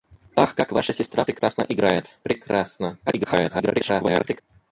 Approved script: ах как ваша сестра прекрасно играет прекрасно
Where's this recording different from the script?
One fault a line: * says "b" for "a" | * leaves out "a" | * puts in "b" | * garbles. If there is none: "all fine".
* garbles